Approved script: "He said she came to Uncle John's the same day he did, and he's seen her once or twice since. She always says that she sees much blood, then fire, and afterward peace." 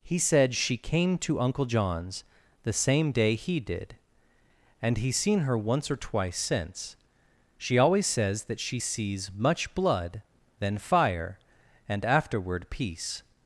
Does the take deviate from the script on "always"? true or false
false